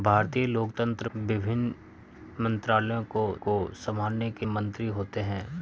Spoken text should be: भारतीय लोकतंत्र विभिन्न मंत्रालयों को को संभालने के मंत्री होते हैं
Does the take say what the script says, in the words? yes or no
yes